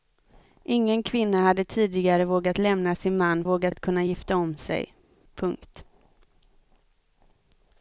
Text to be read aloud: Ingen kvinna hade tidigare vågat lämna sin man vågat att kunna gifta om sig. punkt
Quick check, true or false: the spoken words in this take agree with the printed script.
true